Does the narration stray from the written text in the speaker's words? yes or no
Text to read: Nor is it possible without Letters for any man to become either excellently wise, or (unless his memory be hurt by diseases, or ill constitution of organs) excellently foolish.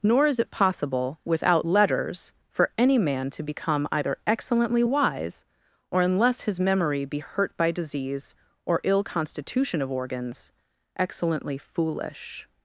yes